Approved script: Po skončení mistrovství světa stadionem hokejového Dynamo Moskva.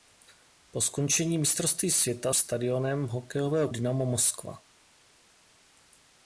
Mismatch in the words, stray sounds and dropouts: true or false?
false